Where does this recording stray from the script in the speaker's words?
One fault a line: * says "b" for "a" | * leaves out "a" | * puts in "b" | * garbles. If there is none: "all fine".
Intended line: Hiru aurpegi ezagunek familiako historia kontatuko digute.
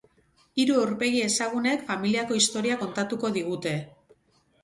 all fine